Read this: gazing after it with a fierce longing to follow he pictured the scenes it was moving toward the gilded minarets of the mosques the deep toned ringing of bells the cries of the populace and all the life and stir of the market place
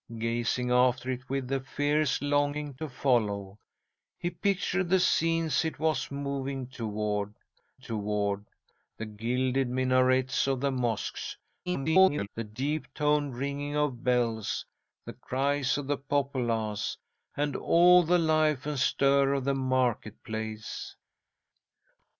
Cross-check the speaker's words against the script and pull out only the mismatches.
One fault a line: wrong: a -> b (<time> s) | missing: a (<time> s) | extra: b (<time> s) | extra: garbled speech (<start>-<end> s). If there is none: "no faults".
extra: toward (7.7 s)
extra: garbled speech (11.7-12.3 s)